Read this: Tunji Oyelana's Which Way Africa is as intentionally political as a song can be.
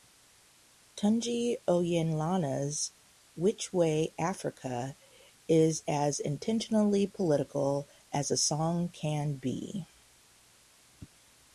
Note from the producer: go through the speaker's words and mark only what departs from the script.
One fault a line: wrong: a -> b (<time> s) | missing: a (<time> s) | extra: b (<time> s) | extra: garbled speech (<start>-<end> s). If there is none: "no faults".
no faults